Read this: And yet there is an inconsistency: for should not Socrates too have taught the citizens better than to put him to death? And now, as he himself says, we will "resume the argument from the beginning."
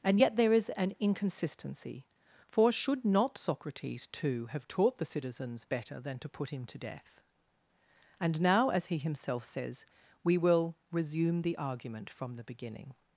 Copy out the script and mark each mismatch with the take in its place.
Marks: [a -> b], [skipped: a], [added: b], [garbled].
And yet there is an inconsistency: for should not Socrates too have taught the citizens better than to put him to death? And now, as he himself says, we will "resume the argument from the beginning."